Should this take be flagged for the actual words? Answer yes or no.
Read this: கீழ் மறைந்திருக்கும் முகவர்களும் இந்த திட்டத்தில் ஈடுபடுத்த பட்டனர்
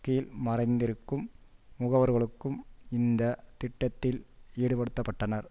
no